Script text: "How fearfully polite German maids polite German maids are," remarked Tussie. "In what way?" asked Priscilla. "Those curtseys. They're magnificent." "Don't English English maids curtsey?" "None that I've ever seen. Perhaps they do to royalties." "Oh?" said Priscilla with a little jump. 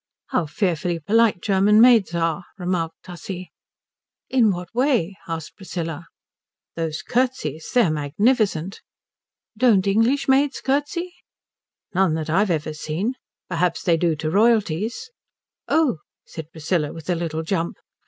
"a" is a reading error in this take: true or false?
false